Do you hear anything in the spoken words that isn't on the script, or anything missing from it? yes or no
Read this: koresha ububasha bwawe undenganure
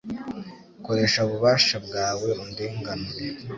no